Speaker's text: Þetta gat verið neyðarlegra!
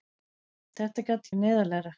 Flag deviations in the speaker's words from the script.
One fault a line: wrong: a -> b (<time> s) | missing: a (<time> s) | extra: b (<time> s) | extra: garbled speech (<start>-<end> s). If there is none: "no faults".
no faults